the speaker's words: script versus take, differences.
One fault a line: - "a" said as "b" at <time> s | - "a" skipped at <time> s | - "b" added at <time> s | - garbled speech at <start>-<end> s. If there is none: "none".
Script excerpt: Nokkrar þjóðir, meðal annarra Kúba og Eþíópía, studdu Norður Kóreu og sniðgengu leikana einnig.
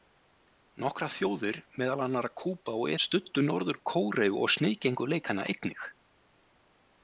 - "Eþíópía" skipped at 3.0 s